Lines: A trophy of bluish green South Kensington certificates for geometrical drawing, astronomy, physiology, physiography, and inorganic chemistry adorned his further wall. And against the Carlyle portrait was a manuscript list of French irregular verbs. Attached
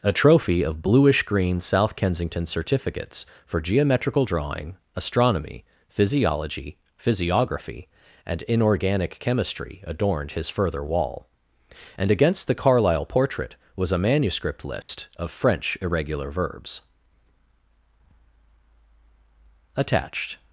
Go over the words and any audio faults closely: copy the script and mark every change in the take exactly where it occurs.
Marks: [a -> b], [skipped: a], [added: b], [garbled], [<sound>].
A trophy of bluish green South Kensington certificates for geometrical drawing, astronomy, physiology, physiography, and inorganic chemistry adorned his further wall. And against the Carlyle portrait was a manuscript list [dropout] of French irregular verbs. Attached